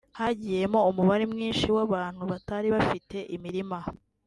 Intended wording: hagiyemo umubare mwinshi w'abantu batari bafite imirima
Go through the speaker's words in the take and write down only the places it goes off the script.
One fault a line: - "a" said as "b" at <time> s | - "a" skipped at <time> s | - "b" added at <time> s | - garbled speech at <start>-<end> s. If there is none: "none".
none